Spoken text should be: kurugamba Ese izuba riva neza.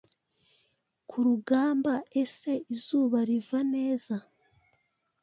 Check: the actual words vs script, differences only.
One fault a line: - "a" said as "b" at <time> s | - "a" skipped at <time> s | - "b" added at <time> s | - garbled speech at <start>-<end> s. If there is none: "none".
none